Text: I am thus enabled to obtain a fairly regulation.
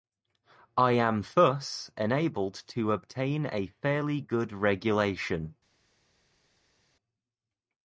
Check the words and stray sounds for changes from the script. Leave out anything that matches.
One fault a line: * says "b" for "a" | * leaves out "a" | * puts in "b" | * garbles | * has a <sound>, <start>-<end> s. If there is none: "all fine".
* puts in "good"